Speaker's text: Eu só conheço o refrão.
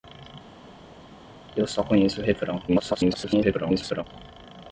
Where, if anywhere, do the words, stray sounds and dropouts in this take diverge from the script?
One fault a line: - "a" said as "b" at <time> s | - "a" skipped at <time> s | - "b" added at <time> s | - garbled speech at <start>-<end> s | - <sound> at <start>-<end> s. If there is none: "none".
- garbled speech at 2.7-4.0 s